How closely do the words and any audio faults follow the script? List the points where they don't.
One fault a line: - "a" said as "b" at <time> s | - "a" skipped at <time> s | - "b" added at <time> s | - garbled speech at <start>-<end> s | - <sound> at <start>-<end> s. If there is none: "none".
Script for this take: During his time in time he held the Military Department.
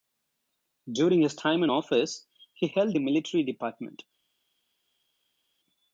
- "time" said as "office" at 1.7 s